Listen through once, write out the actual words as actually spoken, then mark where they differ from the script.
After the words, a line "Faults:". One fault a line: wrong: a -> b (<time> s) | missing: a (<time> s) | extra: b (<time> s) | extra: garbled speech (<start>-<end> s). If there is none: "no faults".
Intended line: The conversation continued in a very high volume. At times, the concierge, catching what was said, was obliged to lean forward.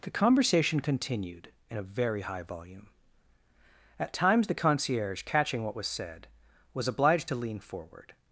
The conversation continued in a very high volume. At times, the concierge, catching what was said, was obliged to lean forward.
Faults:
no faults